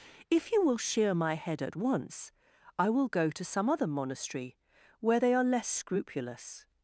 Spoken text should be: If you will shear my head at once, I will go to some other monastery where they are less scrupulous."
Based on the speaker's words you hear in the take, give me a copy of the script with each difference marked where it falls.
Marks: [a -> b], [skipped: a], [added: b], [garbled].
If you will shear my head at once, I will go to some other monastery where they are less scrupulous."